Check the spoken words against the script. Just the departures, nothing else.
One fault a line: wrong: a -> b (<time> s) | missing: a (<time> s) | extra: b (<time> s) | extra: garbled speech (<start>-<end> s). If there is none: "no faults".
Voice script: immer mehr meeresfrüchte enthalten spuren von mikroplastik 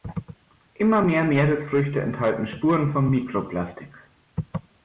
no faults